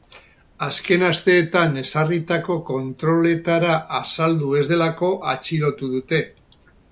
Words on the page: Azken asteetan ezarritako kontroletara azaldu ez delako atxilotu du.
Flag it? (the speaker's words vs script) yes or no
yes